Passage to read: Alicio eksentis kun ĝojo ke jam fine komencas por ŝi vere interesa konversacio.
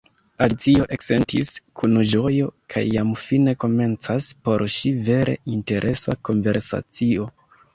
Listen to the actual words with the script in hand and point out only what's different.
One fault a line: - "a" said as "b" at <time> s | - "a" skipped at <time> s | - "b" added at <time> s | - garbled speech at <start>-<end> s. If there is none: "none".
none